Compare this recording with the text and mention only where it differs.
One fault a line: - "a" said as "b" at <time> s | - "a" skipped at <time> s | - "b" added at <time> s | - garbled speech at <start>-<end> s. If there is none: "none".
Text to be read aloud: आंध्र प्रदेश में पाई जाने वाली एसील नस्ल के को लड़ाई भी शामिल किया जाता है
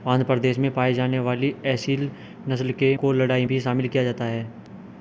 none